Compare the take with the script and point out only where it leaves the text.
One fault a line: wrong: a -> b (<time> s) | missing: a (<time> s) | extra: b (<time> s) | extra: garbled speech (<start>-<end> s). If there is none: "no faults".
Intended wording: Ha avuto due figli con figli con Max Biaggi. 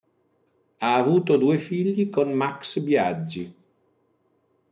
missing: figli con (2.3 s)